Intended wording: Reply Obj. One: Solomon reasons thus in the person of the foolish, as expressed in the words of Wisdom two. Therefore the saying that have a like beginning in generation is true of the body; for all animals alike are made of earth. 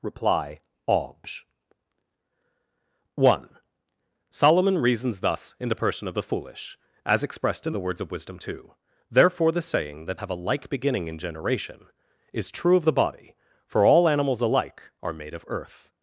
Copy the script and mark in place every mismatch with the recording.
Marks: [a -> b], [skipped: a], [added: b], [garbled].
Reply Obj. One: Solomon reasons thus in the person of the foolish, as expressed in the words of Wisdom two. Therefore the saying that have a like beginning in generation is true of the body; for all animals alike are made of earth.